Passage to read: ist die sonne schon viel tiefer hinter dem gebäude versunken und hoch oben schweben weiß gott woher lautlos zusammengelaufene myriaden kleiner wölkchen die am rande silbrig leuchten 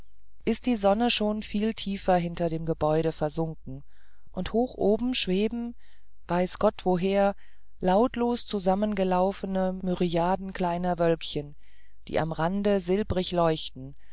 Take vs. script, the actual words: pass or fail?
pass